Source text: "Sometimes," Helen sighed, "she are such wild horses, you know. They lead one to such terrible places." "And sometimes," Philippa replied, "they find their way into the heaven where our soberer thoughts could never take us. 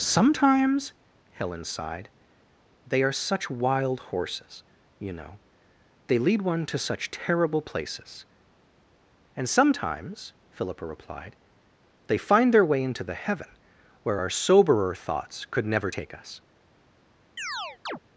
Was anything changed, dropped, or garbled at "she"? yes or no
yes